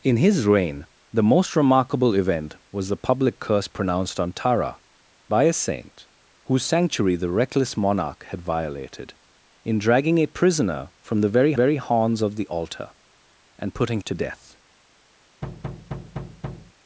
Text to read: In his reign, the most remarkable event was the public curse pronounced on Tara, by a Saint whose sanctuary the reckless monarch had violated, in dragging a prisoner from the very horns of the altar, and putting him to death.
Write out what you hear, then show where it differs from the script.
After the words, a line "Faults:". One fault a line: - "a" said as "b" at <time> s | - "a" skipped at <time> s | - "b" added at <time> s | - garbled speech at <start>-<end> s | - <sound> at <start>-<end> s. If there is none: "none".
In his reign, the most remarkable event was the public curse pronounced on Tara, by a Saint whose sanctuary the reckless monarch had violated, in dragging a prisoner from the very very horns of the altar, and putting to death.
Faults:
- "very" added at 11.5 s
- "him" skipped at 14.0 s
- thud at 15.4-16.7 s